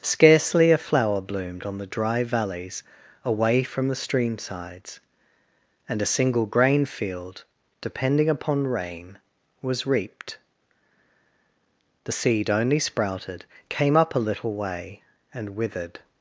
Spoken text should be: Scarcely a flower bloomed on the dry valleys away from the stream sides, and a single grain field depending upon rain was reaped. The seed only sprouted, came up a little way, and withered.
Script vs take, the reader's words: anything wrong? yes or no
no